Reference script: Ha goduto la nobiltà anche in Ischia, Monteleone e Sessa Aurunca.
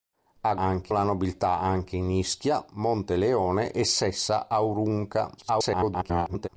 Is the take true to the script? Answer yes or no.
no